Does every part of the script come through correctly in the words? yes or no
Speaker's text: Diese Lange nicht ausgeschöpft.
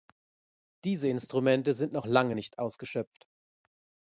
no